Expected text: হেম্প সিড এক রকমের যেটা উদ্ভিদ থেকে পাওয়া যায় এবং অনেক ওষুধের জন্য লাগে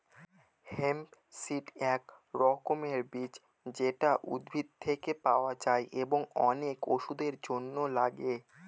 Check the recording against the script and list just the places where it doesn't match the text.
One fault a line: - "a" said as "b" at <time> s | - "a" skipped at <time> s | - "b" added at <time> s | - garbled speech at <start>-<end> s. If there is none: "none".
- "বীজ" added at 3.1 s